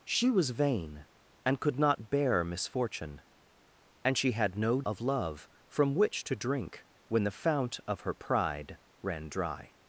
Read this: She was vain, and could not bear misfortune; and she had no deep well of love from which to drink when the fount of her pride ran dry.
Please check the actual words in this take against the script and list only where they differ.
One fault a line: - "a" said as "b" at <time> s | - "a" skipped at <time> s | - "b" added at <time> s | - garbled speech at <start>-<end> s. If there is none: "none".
- "deep well" skipped at 4.8 s